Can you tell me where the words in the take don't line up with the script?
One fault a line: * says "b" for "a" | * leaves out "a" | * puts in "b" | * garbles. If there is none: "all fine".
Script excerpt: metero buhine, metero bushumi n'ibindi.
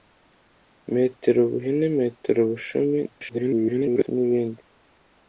* garbles